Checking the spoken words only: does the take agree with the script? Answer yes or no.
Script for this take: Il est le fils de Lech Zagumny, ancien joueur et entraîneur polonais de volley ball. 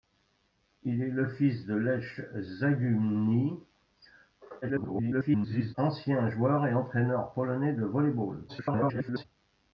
no